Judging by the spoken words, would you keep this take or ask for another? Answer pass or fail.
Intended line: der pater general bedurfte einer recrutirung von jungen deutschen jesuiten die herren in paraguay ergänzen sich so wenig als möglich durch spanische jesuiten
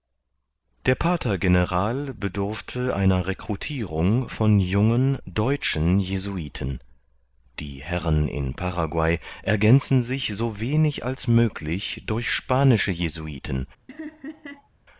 pass